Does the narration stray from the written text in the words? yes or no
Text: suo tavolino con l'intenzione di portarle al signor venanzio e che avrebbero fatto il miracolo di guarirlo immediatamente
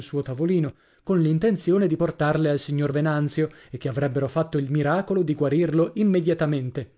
no